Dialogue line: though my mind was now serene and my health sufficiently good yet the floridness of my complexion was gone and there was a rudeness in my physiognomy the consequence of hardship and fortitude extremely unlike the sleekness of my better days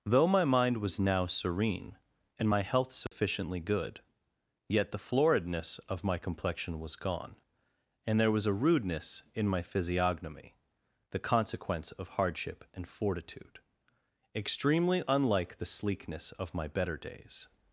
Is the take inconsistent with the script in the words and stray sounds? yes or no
yes